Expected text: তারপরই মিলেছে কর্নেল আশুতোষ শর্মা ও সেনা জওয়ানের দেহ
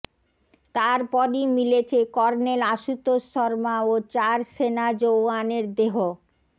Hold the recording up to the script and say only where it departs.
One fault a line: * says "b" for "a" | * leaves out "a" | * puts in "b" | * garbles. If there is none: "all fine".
* puts in "চার"